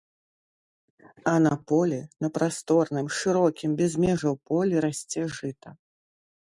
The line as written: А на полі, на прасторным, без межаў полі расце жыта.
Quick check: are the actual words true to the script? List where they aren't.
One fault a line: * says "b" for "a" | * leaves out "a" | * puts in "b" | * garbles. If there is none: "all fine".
* puts in "шырокім"